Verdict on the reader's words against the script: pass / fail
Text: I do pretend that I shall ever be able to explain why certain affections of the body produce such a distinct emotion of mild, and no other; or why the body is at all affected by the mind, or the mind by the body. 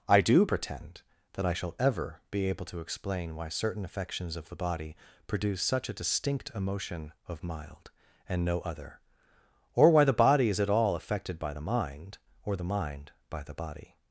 pass